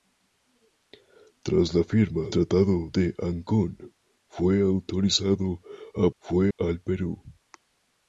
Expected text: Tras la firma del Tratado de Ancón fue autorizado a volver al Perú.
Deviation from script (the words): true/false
true